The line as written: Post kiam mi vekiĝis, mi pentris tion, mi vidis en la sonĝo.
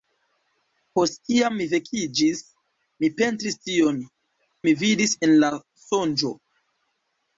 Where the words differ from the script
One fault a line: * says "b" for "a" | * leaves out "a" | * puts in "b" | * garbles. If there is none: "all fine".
all fine